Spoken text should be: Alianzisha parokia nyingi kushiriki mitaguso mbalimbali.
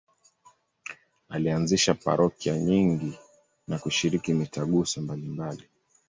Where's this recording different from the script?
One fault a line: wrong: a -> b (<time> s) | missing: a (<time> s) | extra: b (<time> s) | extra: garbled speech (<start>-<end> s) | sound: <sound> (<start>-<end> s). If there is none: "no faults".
extra: na (3.7 s)